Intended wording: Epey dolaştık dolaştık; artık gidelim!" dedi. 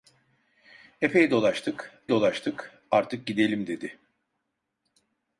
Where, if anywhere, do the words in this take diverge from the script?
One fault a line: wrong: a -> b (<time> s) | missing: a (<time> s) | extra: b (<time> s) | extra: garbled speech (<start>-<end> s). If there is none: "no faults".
no faults